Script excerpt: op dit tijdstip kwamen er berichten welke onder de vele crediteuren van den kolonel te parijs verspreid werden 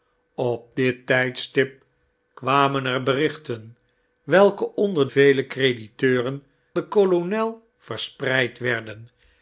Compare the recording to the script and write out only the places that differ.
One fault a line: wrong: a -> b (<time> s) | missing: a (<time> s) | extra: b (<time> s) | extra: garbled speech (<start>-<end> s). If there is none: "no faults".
missing: de (5.1 s)
missing: van (6.4 s)
missing: te parijs (7.7 s)